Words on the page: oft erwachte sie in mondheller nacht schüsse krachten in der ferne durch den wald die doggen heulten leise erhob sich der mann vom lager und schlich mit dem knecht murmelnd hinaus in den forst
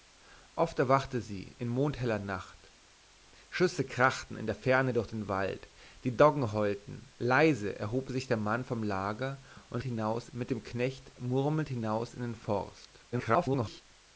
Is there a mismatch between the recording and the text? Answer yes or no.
yes